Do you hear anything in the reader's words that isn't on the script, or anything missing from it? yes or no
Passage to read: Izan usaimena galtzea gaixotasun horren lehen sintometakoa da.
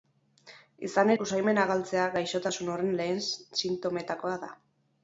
no